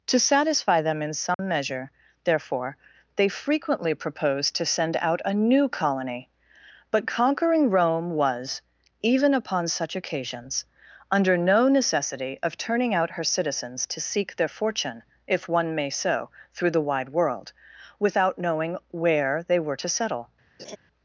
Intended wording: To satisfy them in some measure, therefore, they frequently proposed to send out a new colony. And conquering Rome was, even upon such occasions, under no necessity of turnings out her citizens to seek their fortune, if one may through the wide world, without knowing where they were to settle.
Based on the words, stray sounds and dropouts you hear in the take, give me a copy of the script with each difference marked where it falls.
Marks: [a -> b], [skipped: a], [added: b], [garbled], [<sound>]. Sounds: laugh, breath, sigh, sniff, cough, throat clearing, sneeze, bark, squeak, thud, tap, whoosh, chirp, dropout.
To satisfy them in some [dropout] measure, therefore, they frequently proposed to send out a new colony. [And -> But] conquering Rome was, even upon such occasions, under no necessity of [turnings -> turning] out her citizens to seek their fortune, if one may [added: so] through the wide world, without knowing where they were to settle. [laugh]